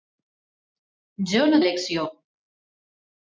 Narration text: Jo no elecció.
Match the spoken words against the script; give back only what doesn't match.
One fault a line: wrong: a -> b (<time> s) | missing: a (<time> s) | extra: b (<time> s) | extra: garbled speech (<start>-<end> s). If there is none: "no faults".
no faults